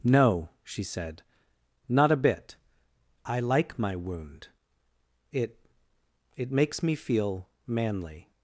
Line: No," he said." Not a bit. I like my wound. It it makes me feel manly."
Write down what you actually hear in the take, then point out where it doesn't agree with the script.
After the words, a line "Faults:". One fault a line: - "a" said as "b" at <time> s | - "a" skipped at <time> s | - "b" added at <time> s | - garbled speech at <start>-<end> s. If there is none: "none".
No," she said." Not a bit. I like my wound. It it makes me feel manly."
Faults:
- "he" said as "she" at 0.6 s